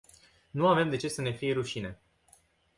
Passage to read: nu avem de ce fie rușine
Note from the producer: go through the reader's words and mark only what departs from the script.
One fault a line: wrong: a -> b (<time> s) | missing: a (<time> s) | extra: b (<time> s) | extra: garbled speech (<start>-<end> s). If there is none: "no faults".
extra: să ne (1.1 s)